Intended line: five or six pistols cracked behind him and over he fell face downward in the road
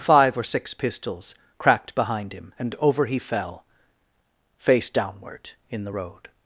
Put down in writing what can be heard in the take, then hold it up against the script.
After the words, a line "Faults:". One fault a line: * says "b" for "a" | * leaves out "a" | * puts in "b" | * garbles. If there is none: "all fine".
five or six pistols cracked behind him and over he fell face downward in the road
Faults:
all fine